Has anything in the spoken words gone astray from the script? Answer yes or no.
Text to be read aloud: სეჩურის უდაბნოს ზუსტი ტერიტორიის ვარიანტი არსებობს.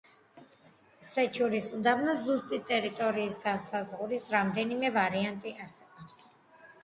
yes